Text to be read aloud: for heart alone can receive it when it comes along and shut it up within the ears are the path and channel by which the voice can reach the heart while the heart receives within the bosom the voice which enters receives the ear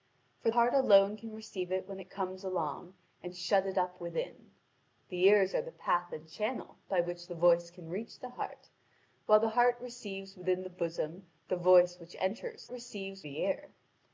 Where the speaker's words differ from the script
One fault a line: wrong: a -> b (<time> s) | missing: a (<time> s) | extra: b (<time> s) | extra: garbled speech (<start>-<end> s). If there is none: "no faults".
no faults